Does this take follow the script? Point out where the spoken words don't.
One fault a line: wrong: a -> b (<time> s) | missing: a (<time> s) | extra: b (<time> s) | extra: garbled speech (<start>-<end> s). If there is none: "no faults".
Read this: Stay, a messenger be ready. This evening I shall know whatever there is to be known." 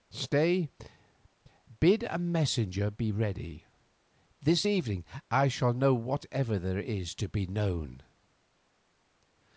extra: bid (1.8 s)